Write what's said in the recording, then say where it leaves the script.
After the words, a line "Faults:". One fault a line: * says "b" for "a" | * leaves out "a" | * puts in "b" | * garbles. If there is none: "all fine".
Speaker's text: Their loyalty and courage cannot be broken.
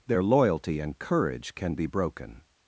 Their loyalty and courage can be broken.
Faults:
* says "can" for "cannot"